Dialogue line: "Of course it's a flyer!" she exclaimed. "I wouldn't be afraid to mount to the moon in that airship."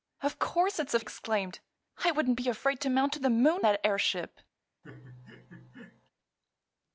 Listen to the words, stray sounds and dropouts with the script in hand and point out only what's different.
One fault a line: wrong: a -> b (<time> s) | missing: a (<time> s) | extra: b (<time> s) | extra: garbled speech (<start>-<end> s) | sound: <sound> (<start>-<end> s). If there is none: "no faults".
missing: flyer she (1.0 s)
missing: in (3.6 s)
sound: laugh (4.8-6.1 s)